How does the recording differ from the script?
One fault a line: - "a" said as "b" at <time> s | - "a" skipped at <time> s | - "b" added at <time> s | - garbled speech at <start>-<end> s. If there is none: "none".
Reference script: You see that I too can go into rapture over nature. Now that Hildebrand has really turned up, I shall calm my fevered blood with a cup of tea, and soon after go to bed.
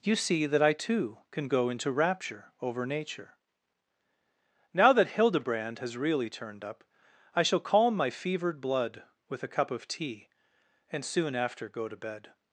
none